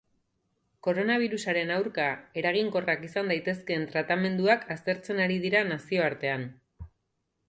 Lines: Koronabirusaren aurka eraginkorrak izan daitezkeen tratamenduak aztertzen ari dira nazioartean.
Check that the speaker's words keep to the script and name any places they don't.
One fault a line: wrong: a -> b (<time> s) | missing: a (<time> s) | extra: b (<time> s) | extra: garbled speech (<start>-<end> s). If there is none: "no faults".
no faults